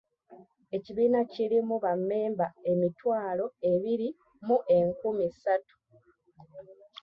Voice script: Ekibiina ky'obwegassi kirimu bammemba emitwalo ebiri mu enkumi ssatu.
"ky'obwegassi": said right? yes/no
no